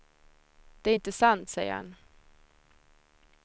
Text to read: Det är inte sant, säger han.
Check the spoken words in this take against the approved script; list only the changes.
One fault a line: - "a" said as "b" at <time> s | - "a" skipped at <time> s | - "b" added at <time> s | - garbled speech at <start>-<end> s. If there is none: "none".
none